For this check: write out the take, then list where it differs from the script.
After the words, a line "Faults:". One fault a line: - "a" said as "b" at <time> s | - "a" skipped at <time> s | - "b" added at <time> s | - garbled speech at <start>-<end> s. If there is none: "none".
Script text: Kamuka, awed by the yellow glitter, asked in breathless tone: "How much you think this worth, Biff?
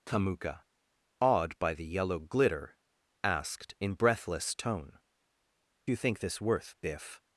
Kamuka, awed by the yellow glitter, asked in breathless tone: "You think this worth, Biff?
Faults:
- "How much" skipped at 5.0 s